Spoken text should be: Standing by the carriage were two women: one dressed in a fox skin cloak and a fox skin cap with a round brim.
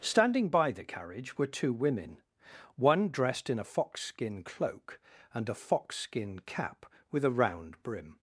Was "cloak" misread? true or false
false